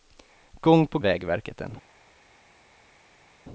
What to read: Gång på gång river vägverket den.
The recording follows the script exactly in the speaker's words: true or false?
false